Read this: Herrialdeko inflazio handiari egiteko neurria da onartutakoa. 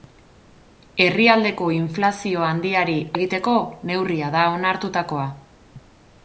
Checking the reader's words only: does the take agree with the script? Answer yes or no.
yes